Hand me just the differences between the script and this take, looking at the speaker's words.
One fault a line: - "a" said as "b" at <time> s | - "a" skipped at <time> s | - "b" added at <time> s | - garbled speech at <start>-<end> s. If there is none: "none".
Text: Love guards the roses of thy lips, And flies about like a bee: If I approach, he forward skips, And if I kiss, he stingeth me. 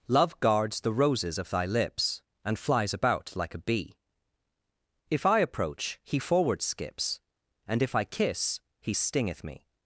none